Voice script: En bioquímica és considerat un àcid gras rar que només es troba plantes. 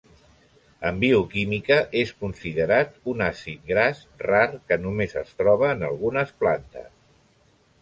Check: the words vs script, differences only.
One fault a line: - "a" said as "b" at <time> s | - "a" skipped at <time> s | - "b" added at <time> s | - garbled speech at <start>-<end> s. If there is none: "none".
- "en algunes" added at 5.8 s